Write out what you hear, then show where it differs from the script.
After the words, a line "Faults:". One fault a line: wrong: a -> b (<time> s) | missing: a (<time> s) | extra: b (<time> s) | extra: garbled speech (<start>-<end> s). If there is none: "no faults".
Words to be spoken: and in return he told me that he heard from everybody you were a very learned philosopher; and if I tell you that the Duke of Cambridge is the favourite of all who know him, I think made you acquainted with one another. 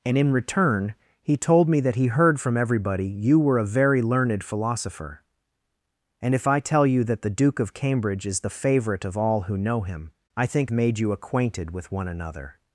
and in return he told me that he heard from everybody you were a very learned philosopher; and if I tell you that the Duke of Cambridge is the favourite of all who know him, I think made you acquainted with one another.
Faults:
no faults